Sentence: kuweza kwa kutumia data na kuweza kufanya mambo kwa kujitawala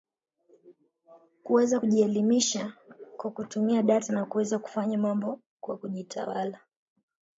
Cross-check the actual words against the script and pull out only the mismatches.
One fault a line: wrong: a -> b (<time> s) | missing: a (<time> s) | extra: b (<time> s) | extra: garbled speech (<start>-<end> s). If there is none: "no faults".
extra: kujielimisha (1.8 s)